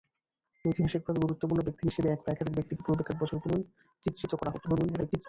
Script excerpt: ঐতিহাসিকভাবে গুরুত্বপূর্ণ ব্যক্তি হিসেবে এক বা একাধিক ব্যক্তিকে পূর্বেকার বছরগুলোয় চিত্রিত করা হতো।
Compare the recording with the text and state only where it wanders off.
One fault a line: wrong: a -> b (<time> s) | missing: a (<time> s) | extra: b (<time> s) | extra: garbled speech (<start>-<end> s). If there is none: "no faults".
extra: garbled speech (4.6-5.3 s)